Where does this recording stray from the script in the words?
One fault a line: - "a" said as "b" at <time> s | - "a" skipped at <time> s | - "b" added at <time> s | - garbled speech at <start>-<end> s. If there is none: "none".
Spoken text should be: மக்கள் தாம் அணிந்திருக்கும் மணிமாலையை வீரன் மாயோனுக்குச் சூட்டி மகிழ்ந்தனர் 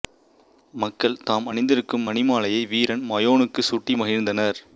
none